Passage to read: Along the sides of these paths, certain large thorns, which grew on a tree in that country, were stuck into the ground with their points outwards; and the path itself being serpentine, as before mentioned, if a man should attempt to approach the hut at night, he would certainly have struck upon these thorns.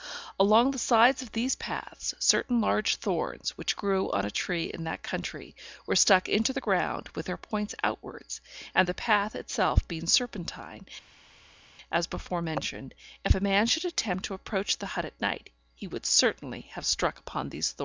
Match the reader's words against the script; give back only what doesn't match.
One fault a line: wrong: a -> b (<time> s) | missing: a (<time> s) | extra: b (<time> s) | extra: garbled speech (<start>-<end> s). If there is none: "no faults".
no faults